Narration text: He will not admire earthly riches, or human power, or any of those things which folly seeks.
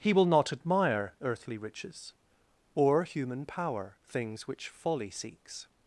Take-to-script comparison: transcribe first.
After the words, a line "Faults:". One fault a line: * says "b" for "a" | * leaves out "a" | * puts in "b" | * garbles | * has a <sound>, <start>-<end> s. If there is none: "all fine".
He will not admire earthly riches, or human power, things which folly seeks.
Faults:
* leaves out "or any of those"